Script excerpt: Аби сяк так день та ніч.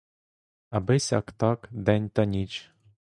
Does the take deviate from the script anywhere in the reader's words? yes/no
no